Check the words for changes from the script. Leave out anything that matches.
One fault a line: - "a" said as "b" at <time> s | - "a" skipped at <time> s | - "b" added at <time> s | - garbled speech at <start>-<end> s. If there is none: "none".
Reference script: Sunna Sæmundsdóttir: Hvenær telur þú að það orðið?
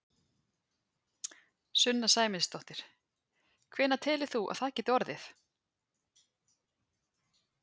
- "geti" added at 4.8 s